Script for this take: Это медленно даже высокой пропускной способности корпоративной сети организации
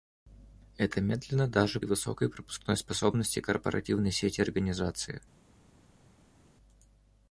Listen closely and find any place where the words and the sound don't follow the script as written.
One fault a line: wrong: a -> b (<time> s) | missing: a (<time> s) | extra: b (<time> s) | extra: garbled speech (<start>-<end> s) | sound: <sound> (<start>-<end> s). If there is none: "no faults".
no faults